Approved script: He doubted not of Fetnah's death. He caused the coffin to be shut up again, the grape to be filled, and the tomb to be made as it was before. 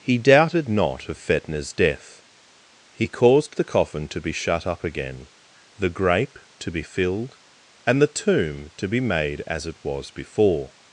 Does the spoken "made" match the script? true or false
true